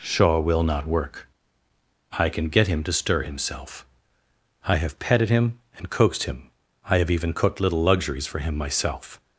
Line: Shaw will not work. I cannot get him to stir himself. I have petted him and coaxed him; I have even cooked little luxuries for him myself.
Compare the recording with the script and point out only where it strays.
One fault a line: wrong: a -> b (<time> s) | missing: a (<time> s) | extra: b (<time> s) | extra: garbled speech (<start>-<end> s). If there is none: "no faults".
wrong: cannot -> can (2.3 s)